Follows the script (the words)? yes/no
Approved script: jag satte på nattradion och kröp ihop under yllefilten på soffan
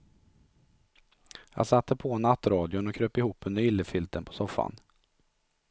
yes